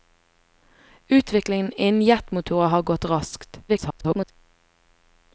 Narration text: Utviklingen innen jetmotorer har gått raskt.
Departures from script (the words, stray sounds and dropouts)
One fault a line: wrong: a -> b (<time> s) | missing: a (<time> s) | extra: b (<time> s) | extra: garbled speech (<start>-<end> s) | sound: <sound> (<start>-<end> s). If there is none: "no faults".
extra: garbled speech (3.7-4.3 s)